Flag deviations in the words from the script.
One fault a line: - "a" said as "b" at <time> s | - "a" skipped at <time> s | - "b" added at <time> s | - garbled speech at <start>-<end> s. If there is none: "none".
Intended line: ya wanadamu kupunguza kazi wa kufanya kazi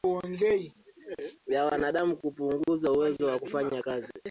- "kazi" said as "uwezo" at 2.9 s